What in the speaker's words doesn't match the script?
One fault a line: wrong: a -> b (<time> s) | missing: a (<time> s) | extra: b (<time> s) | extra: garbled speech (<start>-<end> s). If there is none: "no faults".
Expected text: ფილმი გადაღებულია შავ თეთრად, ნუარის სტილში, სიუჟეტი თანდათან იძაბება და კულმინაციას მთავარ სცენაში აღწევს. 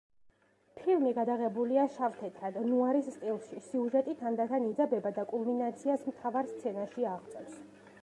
no faults